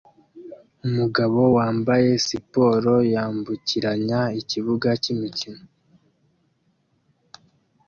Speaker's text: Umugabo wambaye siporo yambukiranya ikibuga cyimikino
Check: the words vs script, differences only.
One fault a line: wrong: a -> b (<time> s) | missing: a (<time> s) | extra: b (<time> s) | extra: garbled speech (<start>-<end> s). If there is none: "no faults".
no faults